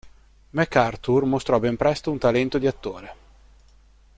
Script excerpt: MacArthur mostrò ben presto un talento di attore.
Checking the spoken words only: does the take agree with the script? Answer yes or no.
yes